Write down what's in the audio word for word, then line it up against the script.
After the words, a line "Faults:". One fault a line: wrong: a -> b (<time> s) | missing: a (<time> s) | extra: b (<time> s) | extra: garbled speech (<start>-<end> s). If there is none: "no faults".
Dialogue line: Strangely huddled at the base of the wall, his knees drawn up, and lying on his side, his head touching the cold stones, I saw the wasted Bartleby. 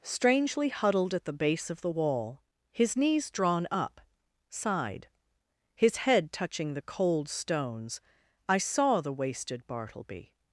Strangely huddled at the base of the wall, his knees drawn up, side, his head touching the cold stones, I saw the wasted Bartleby.
Faults:
missing: and lying on his (4.0 s)